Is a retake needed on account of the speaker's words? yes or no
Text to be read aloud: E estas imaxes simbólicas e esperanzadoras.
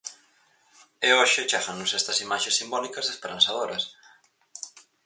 yes